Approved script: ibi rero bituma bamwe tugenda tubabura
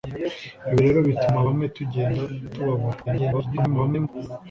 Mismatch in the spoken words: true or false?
true